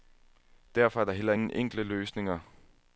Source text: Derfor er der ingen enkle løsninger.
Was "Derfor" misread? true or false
false